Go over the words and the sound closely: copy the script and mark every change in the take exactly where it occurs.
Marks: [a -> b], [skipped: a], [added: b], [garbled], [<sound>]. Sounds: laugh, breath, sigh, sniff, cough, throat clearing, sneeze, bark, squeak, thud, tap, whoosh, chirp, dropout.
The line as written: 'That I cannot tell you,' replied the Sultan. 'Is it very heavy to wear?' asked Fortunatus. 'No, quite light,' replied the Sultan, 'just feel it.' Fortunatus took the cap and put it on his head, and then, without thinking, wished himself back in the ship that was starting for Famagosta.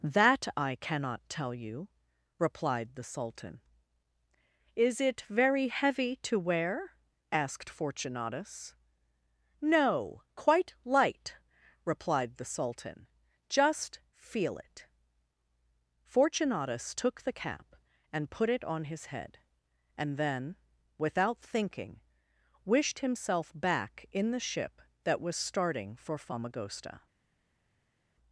'That I cannot tell you,' replied the Sultan. 'Is it very heavy to wear?' asked Fortunatus. 'No, quite light,' replied the Sultan, 'just feel it.' Fortunatus took the cap and put it on his head, and then, without thinking, wished himself back in the ship that was starting for Famagosta.